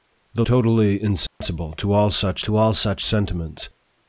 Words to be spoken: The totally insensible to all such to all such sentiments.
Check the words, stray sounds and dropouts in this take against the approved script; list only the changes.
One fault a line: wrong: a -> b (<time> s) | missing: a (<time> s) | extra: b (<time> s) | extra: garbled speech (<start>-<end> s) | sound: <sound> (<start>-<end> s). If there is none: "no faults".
sound: dropout (1.3-1.4 s)